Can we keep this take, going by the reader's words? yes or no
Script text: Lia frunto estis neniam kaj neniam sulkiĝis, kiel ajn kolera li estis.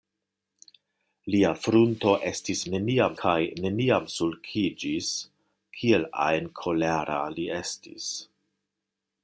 yes